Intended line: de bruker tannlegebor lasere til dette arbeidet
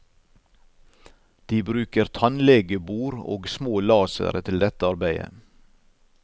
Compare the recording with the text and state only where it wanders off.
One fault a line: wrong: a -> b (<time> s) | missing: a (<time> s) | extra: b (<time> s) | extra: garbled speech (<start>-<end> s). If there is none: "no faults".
extra: og små (3.4 s)